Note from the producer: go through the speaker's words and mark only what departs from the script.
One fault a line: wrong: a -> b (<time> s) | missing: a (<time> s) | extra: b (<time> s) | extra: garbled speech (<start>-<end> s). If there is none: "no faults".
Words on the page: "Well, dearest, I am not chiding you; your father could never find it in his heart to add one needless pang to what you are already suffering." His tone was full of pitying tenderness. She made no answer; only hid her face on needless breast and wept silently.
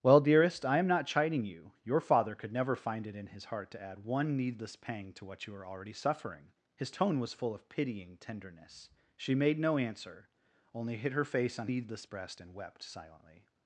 no faults